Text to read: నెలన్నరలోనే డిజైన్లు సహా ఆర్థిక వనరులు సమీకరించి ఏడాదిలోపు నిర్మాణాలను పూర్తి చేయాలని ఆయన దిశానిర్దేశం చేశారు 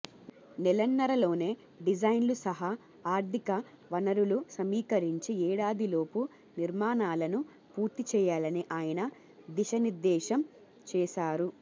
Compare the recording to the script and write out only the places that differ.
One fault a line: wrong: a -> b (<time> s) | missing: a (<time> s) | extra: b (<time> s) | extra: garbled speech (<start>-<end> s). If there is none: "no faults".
no faults